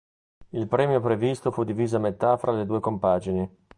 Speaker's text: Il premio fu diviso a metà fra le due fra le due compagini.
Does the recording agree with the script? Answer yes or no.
no